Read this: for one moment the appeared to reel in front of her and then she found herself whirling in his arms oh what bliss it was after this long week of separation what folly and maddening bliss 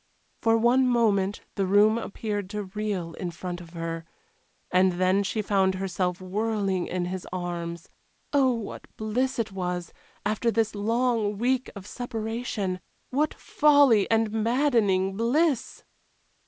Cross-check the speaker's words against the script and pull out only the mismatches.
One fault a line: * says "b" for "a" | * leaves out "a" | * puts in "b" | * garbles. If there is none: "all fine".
* puts in "room"